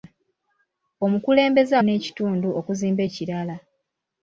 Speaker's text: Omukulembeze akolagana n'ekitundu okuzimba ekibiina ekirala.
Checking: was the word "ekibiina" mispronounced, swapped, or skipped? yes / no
yes